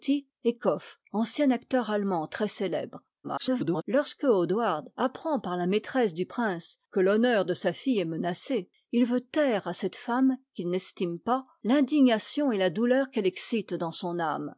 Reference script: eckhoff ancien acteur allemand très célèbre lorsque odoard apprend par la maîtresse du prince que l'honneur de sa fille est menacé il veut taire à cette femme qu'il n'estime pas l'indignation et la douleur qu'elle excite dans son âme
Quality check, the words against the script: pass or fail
fail